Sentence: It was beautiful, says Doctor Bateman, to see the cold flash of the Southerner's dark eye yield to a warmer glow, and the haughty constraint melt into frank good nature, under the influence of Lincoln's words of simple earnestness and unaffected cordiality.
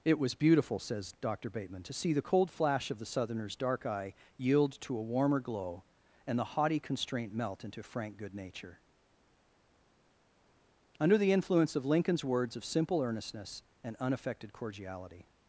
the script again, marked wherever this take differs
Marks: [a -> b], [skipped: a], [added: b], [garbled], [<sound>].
It was beautiful, says Doctor Bateman, to see the cold flash of the Southerner's dark eye yield to a warmer glow, and the haughty constraint melt into frank good nature, under the influence of Lincoln's words of simple earnestness and unaffected cordiality.